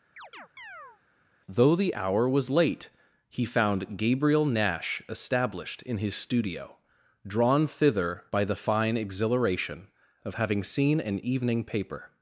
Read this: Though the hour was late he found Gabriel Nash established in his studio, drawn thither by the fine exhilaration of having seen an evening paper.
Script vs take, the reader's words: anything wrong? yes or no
no